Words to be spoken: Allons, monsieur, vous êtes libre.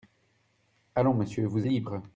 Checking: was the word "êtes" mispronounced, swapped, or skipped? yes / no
yes